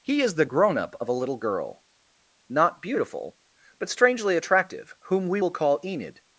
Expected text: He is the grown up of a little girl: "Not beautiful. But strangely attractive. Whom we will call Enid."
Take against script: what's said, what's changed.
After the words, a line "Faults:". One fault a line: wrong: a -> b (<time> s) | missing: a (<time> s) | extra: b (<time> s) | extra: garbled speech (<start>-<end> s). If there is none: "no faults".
He is the grown up of a little girl: "Not beautiful. But strangely attractive. Whom we will call Enid."
Faults:
no faults